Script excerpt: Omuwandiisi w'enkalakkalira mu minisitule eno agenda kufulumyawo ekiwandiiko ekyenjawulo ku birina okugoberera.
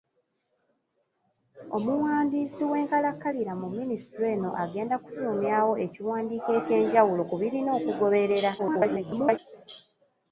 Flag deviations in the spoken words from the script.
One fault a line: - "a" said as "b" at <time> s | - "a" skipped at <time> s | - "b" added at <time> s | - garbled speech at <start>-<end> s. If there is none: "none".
- garbled speech at 8.6-9.4 s